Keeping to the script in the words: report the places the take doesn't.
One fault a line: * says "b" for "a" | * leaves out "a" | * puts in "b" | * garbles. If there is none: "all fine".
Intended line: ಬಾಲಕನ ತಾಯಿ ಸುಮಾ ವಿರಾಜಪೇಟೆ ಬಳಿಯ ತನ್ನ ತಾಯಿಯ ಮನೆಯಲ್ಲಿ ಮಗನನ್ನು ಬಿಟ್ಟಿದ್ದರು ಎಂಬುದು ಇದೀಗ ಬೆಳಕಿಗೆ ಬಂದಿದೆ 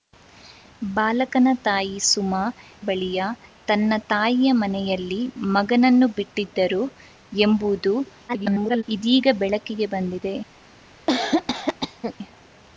* leaves out "ವಿರಾಜಪೇಟೆ"
* garbles